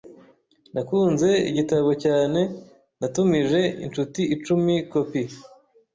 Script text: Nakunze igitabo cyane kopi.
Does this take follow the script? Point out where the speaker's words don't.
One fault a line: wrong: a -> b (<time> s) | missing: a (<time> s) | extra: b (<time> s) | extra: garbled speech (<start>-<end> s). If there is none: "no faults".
extra: natumije inshuti icumi (3.0 s)